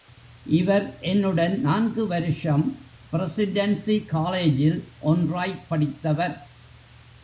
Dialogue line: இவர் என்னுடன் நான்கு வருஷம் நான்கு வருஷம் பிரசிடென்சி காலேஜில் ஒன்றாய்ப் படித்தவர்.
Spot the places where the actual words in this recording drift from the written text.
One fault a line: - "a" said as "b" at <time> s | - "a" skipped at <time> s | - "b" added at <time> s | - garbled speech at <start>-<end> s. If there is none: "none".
- "நான்கு வருஷம்" skipped at 2.9 s